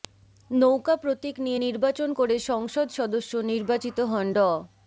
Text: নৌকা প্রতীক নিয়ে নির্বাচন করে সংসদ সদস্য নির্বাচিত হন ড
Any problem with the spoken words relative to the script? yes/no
no